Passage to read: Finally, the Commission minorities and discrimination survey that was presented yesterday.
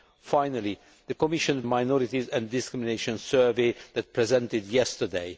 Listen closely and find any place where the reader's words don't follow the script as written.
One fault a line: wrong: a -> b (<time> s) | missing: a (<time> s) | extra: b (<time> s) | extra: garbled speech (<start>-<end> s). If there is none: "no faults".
no faults